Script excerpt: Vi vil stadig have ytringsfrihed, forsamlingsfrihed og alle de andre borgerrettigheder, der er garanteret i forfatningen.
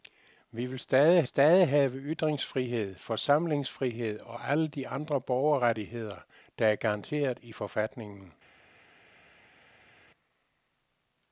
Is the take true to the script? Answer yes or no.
no